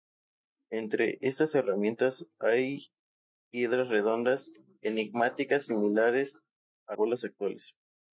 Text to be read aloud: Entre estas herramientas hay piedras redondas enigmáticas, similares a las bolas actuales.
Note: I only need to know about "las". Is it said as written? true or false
false